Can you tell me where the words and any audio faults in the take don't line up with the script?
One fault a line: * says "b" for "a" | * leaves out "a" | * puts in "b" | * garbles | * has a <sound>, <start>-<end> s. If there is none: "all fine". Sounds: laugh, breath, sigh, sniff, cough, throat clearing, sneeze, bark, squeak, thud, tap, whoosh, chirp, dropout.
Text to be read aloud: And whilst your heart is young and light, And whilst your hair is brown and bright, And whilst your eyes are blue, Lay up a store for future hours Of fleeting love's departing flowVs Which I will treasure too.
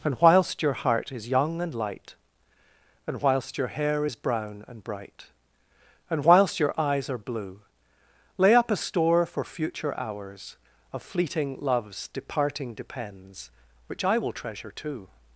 * says "depends" for "flowVs"